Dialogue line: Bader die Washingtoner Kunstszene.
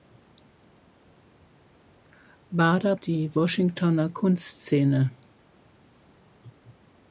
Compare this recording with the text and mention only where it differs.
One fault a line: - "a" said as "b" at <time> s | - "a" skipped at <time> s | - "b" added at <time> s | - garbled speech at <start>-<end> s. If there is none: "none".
none